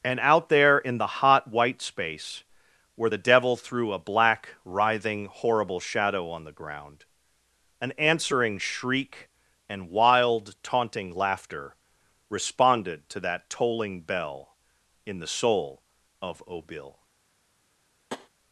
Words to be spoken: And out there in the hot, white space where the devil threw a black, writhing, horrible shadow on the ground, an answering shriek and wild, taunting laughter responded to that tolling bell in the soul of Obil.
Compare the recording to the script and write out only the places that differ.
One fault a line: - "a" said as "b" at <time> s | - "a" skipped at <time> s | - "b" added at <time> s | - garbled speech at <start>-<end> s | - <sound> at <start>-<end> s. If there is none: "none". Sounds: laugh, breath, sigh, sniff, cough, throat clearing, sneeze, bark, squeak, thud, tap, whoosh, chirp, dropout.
- tap at 18.1-18.3 s